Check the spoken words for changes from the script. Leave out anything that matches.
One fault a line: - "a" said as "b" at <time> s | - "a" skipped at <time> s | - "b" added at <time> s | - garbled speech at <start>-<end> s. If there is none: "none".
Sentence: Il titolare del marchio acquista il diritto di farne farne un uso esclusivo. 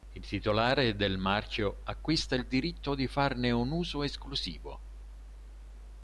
- "farne" skipped at 3.5 s